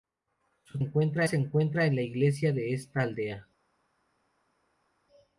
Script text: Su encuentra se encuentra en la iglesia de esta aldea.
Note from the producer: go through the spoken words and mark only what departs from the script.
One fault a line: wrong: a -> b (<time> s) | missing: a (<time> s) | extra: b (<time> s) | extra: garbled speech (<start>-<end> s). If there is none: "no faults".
no faults